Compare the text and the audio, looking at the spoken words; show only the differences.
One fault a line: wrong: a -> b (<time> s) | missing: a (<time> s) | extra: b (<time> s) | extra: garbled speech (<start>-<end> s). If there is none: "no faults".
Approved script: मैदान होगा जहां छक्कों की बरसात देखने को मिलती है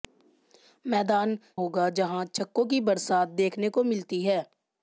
no faults